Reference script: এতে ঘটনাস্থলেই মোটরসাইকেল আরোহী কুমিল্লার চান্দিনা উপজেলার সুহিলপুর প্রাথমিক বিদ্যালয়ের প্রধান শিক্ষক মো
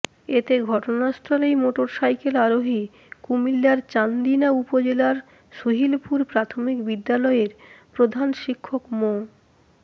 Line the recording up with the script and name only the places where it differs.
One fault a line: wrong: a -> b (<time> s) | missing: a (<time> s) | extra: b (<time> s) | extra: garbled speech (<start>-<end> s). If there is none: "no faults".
no faults